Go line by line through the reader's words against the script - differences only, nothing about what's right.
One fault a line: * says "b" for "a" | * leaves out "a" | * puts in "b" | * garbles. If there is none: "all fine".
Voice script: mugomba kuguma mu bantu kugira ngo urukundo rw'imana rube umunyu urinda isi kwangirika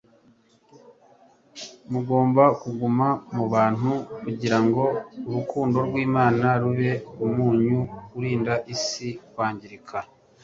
all fine